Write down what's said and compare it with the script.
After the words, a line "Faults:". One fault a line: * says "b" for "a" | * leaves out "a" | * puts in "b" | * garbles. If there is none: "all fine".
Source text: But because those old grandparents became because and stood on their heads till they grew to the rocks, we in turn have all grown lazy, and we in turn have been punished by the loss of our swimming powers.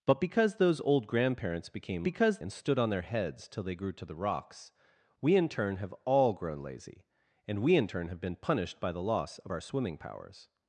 But because those old grandparents became because and stood on their heads till they grew to the rocks, we in turn have all grown lazy, and we in turn have been punished by the loss of our swimming powers.
Faults:
all fine